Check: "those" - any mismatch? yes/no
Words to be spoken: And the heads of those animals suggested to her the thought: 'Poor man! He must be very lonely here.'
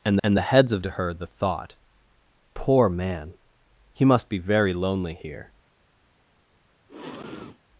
yes